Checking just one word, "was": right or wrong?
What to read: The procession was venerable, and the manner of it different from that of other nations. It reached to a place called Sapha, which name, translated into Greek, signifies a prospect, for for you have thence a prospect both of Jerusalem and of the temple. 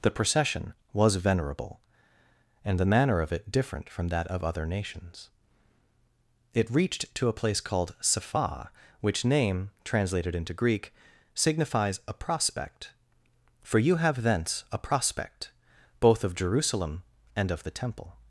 right